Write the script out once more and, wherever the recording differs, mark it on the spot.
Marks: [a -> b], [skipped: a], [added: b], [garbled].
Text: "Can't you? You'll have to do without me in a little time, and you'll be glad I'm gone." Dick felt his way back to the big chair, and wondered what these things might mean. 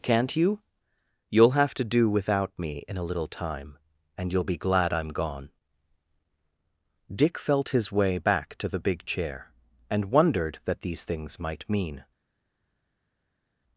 "Can't you? You'll have to do without me in a little time, and you'll be glad I'm gone." Dick felt his way back to the big chair, and wondered [what -> that] these things might mean.